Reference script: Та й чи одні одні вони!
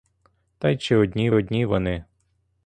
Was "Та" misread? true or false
false